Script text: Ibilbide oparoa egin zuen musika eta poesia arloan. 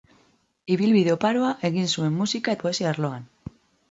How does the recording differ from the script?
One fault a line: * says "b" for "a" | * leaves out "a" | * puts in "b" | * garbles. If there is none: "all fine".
* leaves out "eta"